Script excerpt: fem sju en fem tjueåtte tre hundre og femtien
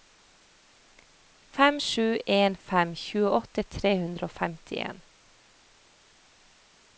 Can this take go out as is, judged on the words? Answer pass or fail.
pass